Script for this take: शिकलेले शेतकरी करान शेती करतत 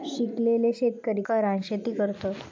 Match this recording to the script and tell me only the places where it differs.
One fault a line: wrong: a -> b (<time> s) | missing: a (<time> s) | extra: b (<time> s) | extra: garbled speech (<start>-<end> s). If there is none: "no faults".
no faults